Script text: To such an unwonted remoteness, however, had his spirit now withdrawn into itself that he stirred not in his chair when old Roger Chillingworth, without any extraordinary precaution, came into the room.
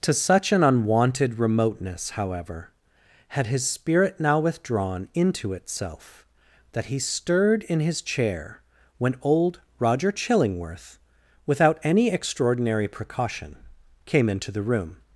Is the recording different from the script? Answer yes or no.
yes